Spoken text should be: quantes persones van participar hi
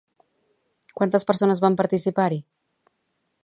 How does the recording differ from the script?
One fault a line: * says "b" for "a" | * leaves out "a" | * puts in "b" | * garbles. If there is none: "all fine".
all fine